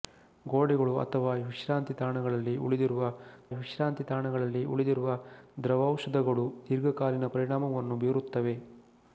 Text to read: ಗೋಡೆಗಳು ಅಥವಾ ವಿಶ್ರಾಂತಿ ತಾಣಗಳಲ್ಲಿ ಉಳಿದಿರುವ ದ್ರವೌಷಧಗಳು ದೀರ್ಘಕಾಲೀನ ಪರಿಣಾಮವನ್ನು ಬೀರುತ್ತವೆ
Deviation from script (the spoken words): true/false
true